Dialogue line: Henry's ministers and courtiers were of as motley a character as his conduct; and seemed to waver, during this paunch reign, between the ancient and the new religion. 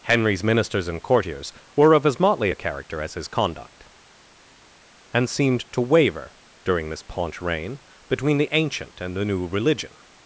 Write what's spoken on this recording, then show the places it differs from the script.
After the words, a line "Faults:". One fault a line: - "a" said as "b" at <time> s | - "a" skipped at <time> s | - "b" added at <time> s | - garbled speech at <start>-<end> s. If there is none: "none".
Henry's ministers and courtiers were of as motley a character as his conduct; and seemed to waver, during this paunch reign, between the ancient and the new religion.
Faults:
none